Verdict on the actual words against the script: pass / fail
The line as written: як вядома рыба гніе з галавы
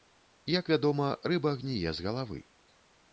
pass